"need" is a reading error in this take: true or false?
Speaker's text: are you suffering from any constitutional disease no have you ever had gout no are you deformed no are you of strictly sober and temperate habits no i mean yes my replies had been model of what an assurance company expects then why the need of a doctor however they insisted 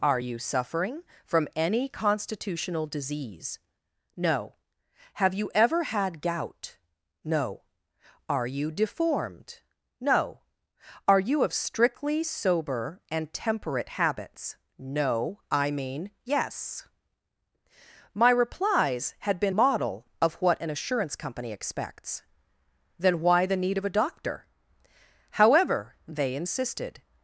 false